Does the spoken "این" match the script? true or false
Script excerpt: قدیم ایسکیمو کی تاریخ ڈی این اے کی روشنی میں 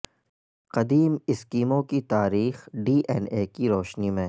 true